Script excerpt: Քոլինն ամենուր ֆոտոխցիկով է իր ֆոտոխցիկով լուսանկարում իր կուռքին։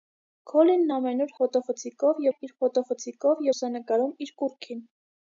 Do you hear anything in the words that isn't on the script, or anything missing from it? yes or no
no